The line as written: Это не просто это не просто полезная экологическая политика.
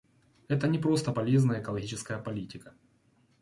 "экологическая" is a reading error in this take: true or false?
false